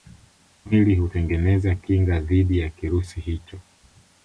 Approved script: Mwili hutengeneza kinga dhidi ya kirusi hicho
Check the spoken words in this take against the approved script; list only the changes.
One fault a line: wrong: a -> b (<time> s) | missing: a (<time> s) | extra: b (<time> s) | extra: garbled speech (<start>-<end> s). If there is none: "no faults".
no faults